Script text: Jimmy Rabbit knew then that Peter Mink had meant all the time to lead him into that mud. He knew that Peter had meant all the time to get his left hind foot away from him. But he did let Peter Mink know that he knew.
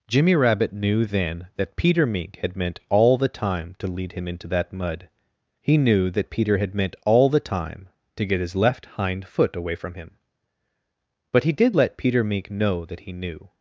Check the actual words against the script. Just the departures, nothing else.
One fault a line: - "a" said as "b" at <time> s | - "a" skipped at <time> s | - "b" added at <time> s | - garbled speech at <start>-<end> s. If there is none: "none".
none